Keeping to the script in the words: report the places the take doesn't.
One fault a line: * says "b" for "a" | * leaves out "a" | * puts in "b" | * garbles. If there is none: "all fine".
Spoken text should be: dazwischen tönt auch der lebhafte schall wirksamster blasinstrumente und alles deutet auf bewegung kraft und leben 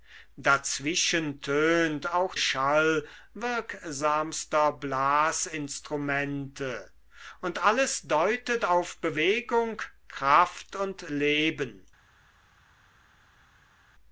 * leaves out "der lebhafte"